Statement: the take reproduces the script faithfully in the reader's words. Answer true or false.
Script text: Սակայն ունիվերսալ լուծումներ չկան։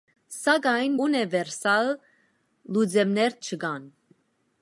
true